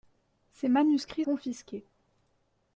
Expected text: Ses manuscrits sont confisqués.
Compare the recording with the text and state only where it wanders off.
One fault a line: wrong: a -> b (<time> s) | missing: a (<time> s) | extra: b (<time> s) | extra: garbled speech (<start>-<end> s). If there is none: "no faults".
missing: sont (1.3 s)